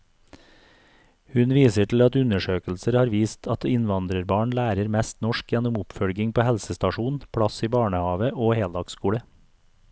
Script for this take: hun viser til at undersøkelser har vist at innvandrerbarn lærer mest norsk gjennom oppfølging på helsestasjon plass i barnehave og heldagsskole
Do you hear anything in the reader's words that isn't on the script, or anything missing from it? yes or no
no